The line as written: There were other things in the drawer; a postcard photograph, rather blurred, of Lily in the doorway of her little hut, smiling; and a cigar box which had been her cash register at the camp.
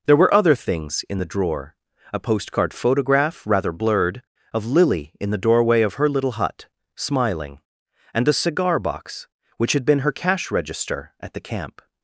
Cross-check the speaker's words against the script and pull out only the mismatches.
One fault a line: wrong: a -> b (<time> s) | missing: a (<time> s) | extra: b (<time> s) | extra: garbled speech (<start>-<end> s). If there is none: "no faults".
no faults